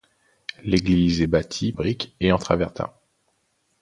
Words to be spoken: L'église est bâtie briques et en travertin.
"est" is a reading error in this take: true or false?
false